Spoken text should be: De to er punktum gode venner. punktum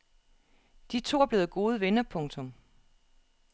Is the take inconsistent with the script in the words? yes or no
yes